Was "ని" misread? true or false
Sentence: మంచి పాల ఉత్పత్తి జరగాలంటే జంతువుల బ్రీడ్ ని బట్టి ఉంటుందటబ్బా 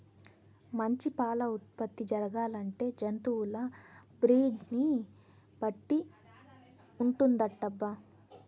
false